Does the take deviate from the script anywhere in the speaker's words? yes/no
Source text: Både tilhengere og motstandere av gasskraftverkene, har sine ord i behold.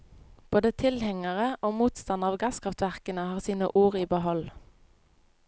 no